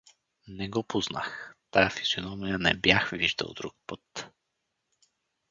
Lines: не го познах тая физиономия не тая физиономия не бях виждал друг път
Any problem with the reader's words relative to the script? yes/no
yes